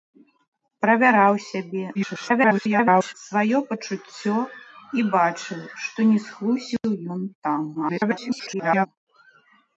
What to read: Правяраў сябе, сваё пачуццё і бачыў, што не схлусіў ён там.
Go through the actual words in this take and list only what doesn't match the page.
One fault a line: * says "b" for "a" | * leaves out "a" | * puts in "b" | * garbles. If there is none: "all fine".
* garbles
* garbles